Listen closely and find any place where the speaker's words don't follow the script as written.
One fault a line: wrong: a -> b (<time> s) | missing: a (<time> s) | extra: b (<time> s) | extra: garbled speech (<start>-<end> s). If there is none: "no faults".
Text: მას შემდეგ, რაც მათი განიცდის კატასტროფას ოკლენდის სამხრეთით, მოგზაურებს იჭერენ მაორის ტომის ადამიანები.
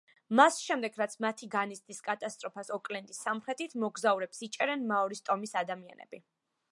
no faults